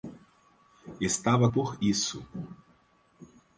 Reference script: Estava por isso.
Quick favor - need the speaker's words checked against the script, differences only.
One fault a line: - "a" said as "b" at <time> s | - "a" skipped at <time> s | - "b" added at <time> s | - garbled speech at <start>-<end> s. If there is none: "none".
none